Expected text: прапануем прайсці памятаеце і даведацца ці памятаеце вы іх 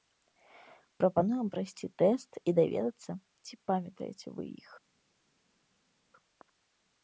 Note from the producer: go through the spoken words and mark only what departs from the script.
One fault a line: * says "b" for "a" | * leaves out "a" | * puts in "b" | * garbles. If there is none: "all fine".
* says "тэст" for "памятаеце"